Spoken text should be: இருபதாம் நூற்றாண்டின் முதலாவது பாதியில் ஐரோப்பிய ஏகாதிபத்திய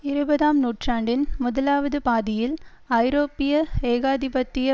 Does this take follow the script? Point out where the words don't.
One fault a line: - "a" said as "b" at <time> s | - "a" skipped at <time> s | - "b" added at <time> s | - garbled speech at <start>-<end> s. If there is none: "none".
none